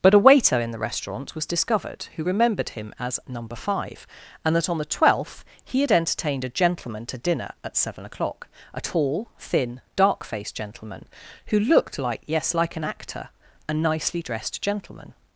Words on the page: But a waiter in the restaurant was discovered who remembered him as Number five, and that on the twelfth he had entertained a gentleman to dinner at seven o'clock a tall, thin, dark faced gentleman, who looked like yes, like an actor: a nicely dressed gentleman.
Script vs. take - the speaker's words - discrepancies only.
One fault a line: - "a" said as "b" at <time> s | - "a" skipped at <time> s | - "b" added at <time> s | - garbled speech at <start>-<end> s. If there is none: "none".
none